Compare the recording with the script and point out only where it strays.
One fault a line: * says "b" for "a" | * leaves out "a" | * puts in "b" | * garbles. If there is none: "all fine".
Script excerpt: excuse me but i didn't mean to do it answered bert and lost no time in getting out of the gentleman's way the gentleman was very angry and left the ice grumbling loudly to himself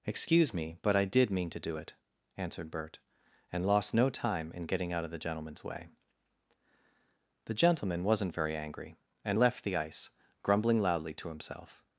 * says "did" for "didn't"
* says "wasn't" for "was"